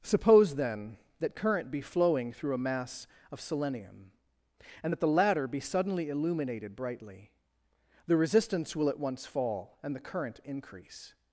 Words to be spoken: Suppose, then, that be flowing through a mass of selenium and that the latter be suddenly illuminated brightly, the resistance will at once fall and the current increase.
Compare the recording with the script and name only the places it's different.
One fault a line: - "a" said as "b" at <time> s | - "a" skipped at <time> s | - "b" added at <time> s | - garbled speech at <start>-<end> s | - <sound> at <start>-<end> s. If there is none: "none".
- "current" added at 1.4 s